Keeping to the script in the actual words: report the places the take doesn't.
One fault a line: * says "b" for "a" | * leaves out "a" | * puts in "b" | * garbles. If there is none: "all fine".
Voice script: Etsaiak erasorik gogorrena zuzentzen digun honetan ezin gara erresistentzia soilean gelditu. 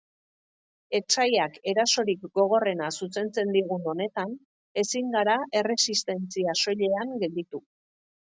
all fine